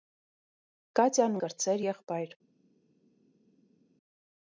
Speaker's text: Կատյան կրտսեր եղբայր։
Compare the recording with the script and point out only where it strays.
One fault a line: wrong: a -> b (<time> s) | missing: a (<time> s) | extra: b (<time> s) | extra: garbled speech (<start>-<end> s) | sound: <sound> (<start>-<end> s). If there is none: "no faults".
no faults